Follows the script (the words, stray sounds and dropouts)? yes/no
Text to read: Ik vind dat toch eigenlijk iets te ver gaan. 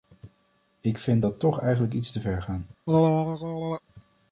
no